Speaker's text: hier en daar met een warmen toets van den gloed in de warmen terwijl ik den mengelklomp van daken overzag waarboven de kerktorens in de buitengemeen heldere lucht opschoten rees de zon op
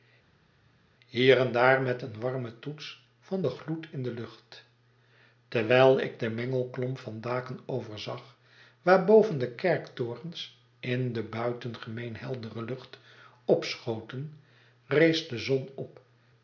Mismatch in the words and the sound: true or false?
true